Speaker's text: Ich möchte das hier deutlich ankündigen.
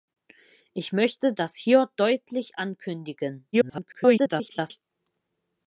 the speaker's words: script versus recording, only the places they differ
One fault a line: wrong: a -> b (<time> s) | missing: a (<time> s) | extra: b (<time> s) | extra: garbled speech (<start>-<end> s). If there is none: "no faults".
extra: garbled speech (3.5-4.8 s)